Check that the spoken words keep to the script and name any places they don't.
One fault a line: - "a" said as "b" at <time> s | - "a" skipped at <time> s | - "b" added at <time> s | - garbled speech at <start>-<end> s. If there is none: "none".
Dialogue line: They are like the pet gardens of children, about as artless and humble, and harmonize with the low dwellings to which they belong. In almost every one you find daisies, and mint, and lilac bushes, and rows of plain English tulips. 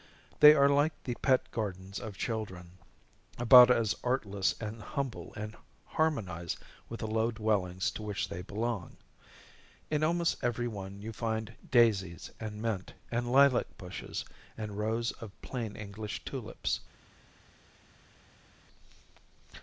none